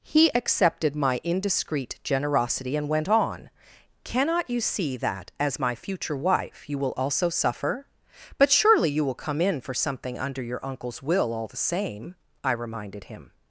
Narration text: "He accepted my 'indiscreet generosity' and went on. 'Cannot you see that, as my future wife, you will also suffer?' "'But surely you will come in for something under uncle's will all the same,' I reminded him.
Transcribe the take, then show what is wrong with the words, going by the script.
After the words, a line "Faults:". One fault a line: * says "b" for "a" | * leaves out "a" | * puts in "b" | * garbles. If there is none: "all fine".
"He accepted my 'indiscreet generosity' and went on. 'Cannot you see that, as my future wife, you will also suffer?' "'But surely you will come in for something under your uncle's will all the same,' I reminded him.
Faults:
* puts in "your"